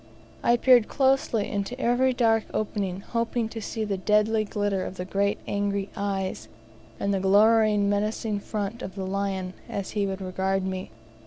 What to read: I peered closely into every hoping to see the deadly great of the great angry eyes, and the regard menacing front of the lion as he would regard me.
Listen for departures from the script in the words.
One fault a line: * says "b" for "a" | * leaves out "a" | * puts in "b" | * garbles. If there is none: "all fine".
* puts in "dark opening"
* says "glitter" for "great"
* says "glowering" for "regard"